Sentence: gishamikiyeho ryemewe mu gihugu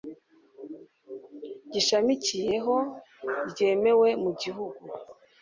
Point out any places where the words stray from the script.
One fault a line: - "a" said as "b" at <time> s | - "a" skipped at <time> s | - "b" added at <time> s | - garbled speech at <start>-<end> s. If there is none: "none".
none